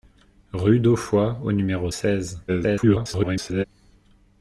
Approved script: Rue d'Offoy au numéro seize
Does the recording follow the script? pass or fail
fail